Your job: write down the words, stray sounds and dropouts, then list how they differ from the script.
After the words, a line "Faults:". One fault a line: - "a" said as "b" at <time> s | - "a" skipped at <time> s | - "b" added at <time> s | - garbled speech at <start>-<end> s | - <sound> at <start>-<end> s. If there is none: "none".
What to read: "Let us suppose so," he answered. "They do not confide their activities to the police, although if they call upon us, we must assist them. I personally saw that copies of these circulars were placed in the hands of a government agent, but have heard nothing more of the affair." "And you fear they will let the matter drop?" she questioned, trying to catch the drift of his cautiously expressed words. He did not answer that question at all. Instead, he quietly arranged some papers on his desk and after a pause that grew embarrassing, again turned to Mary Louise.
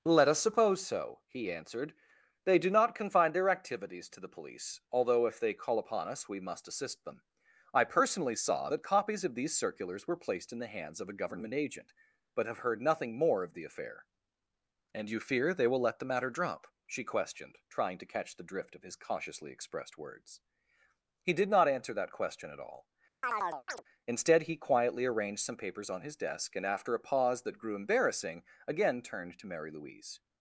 "Let us suppose so," he answered. "They do not confine their activities to the police, although if they call upon us, we must assist them. I personally saw that copies of these circulars were placed in the hands of a government agent, but have heard nothing more of the affair." "And you fear they will let the matter drop?" she questioned, trying to catch the drift of his cautiously expressed words. He did not answer that question at all. Instead, he quietly arranged some papers on his desk and after a pause that grew embarrassing, again turned to Mary Louise.
Faults:
- "confide" said as "confine" at 3.0 s
- chirp at 23.2-23.8 s